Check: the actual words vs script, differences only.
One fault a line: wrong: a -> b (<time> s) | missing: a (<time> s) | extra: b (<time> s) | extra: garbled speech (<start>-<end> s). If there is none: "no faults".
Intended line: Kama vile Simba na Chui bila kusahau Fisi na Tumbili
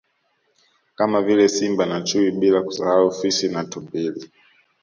no faults